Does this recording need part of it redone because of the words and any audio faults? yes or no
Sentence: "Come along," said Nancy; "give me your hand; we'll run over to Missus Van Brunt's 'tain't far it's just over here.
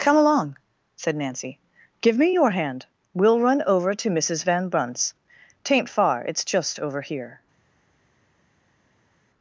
no